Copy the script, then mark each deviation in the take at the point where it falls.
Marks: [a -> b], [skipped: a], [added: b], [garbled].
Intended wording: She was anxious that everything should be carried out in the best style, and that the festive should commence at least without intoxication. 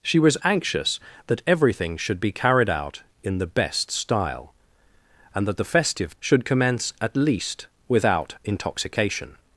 She was anxious that everything should be carried out in the best style, and that the festive should commence at least without intoxication.